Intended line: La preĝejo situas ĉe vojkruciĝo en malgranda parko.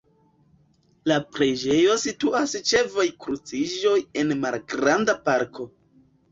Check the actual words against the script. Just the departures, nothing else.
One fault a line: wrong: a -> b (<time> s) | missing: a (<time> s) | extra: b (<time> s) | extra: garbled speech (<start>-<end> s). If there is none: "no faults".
no faults